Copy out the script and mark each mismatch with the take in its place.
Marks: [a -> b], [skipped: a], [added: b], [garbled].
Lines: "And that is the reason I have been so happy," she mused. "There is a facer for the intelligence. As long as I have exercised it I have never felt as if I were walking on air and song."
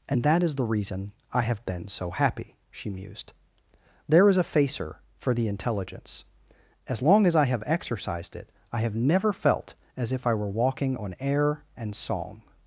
"And that is the reason I have been so happy," she mused. "There is a facer for the intelligence. As long as I have exercised it I have never felt as if I were walking on air and song."